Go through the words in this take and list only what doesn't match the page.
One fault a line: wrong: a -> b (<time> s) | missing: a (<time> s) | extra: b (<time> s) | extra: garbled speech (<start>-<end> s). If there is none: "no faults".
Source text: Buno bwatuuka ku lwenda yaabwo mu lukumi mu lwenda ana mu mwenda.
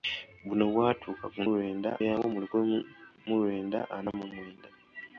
no faults